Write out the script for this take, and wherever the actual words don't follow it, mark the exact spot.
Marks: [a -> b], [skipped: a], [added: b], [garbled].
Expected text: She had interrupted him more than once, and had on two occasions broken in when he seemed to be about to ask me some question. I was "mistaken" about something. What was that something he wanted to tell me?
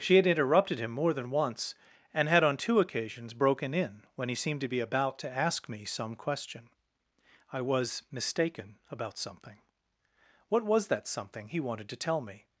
She had interrupted him more than once, and had on two occasions broken in when he seemed to be about to ask me some question. I was "mistaken" about something. What was that something he wanted to tell me?